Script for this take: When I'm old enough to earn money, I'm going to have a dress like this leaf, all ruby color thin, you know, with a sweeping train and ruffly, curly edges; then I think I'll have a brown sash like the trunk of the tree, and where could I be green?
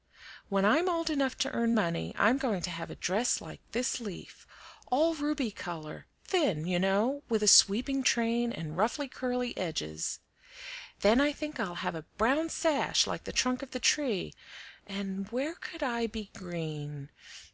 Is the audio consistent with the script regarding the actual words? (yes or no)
yes